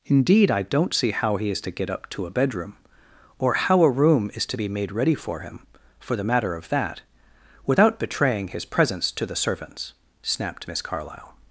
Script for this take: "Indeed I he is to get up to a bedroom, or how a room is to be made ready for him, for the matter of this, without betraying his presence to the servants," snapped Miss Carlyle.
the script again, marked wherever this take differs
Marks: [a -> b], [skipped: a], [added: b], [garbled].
"Indeed I [added: don't see how] he is to get up to a bedroom, or how a room is to be made ready for him, for the matter of [this, -> that] without betraying his presence to the servants," snapped Miss Carlyle.